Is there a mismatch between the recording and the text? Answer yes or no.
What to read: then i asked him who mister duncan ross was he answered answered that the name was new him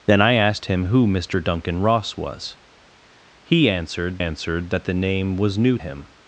no